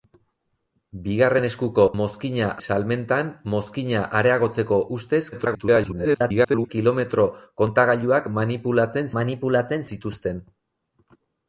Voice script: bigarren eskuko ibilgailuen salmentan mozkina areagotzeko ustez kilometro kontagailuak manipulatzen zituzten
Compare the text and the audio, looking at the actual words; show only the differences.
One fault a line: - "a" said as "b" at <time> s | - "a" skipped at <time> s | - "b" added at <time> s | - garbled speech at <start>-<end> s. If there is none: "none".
- "ibilgailuen" said as "mozkina" at 2.0 s
- garbled speech at 5.3-6.7 s
- "manipulatzen" added at 9.2 s